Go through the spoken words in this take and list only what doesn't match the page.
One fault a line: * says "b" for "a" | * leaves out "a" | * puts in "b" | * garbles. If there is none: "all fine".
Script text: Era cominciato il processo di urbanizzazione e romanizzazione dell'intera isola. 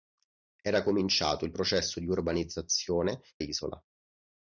* leaves out "e romanizzazione dell'intera"